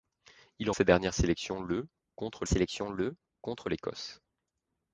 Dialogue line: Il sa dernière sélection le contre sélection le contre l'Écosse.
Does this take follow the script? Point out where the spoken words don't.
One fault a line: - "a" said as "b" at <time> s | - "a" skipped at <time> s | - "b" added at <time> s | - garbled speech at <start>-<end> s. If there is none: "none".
none